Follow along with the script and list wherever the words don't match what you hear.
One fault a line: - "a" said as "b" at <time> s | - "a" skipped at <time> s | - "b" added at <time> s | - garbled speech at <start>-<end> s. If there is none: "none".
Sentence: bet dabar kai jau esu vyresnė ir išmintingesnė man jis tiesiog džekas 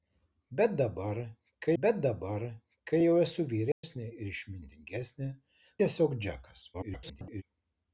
- "bet dabar kai" added at 1.8 s
- "man jis" skipped at 5.3 s
- garbled speech at 6.7-7.4 s